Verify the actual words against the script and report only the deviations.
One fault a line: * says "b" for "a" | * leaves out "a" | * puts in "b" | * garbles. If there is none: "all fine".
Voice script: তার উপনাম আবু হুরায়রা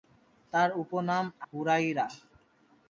* leaves out "আবু"